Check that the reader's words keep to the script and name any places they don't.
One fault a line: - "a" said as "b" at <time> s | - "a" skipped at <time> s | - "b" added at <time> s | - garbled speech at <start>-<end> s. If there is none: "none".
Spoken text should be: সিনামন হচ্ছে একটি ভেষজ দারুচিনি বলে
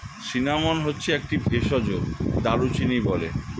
none